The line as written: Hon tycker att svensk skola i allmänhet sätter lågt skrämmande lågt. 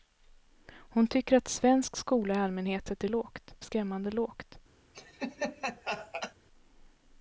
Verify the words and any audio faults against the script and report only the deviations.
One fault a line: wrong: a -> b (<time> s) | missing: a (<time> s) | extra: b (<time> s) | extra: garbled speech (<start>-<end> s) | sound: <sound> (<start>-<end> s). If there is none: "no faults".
sound: laugh (4.9-6.3 s)